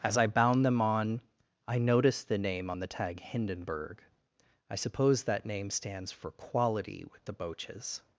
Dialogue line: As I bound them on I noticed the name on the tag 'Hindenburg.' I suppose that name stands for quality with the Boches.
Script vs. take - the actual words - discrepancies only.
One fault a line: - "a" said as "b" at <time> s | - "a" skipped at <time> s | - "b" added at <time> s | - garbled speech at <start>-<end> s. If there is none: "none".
none